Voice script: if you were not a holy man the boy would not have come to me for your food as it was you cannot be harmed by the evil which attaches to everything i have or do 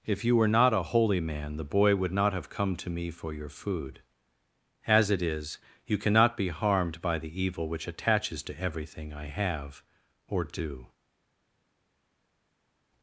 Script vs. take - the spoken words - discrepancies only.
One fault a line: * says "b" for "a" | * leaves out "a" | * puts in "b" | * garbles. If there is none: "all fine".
* says "is" for "was"